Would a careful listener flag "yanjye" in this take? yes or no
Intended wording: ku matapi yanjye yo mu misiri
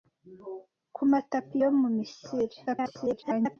yes